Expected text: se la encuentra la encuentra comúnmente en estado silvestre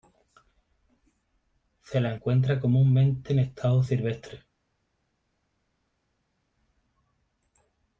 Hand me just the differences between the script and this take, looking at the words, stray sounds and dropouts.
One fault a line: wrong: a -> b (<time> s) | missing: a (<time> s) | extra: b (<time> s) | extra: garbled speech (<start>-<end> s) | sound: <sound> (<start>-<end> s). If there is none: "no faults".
missing: la encuentra (2.6 s)